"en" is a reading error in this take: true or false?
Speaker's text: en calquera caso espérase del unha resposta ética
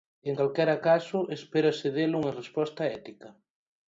false